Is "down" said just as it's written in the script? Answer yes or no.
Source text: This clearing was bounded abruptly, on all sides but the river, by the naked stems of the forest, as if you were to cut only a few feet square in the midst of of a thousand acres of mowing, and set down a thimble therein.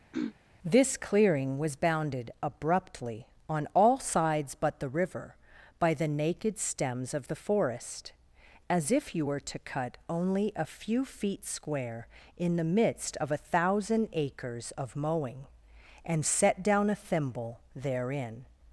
yes